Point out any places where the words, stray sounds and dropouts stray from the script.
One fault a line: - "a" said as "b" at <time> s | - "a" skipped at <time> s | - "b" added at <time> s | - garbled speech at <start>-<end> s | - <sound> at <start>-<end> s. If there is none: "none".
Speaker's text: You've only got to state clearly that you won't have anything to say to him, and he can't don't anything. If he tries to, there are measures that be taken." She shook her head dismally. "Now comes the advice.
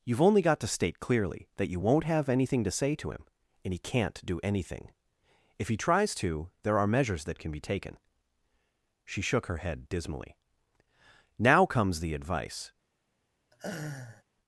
- "don't" said as "do" at 4.2 s
- "can" added at 7.4 s
- laugh at 13.5-14.2 s